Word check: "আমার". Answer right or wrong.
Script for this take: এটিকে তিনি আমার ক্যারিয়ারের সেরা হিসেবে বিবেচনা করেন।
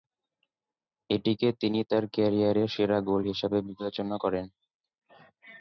wrong